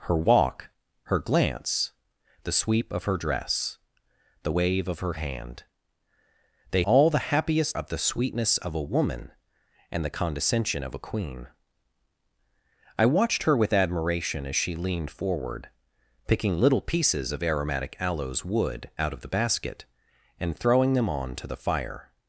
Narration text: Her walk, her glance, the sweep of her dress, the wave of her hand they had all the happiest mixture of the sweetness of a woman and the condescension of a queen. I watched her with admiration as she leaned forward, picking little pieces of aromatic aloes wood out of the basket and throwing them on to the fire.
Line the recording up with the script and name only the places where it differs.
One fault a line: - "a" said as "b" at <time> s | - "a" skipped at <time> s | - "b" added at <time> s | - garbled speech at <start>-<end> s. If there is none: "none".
- "had" skipped at 6.8 s
- "mixture" skipped at 7.8 s